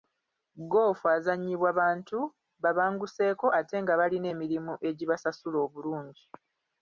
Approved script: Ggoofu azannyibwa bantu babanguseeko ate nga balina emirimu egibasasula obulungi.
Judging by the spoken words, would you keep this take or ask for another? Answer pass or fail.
pass